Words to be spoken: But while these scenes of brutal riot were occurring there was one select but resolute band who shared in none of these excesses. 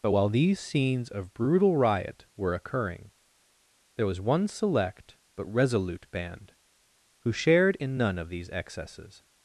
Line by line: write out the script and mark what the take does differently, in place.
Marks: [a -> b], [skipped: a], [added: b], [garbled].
But while these scenes of brutal riot were occurring there was one select but resolute band who shared in none of these excesses.